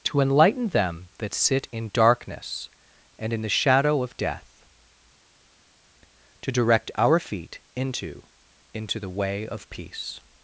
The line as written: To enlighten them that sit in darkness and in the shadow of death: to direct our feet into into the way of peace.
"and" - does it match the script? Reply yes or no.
yes